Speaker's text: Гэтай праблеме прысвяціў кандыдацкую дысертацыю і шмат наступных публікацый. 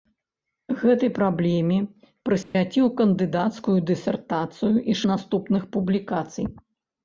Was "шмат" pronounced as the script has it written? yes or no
no